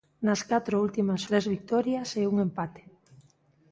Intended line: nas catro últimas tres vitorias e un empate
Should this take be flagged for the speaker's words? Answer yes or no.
no